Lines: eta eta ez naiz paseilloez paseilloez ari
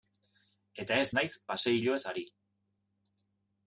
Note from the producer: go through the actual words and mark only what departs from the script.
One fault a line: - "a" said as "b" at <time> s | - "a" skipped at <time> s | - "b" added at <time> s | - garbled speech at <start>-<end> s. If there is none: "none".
- "eta" skipped at 1.0 s
- "paseilloez" skipped at 2.0 s